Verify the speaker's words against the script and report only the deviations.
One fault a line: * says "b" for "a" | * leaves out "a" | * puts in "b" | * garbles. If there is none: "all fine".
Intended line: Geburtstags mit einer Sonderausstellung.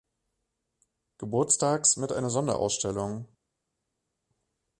all fine